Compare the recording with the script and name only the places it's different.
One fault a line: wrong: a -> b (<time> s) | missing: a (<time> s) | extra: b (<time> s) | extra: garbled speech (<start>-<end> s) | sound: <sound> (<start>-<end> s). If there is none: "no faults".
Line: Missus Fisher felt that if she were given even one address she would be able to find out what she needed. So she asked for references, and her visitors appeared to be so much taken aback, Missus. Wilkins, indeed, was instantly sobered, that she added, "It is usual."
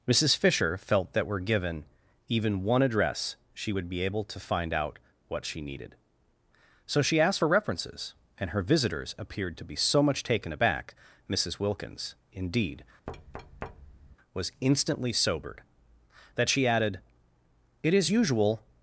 missing: if she (1.3 s)
sound: thud (13.1-14.2 s)